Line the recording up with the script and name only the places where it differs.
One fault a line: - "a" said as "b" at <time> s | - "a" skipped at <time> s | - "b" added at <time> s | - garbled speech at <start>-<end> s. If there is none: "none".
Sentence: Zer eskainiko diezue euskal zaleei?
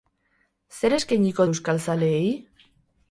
- "diezue" skipped at 1.5 s